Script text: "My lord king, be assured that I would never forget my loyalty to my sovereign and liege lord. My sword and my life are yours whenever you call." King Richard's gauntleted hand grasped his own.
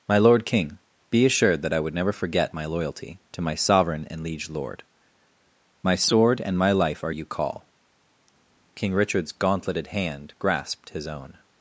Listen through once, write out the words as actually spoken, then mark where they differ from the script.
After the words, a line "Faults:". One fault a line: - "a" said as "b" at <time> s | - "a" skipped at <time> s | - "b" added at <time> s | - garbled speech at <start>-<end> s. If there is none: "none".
"My lord king, be assured that I would never forget my loyalty to my sovereign and liege lord. My sword and my life are you call." King Richard's gauntleted hand grasped his own.
Faults:
- "yours whenever" skipped at 7.1 s